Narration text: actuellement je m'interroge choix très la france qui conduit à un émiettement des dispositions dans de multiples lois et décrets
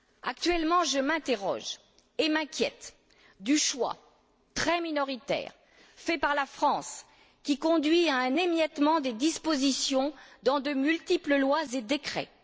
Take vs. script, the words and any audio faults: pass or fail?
fail